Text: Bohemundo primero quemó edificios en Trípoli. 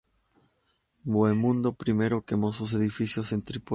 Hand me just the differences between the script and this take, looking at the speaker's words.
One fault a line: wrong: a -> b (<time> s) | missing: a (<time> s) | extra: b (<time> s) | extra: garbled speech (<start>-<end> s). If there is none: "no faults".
extra: sus (2.5 s)